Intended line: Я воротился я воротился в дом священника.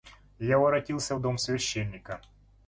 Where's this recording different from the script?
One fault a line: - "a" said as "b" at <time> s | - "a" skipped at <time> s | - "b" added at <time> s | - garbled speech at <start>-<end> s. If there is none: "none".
- "я воротился" skipped at 1.1 s